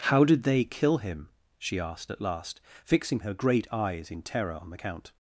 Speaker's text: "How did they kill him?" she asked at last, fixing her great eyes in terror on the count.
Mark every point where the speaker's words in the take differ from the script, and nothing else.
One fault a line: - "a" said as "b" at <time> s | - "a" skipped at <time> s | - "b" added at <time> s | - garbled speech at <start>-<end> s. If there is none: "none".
none